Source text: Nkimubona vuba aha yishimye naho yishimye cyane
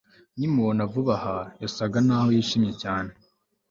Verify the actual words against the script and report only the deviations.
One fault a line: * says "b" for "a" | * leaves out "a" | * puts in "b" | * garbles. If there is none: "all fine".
* says "yasaga" for "yishimye"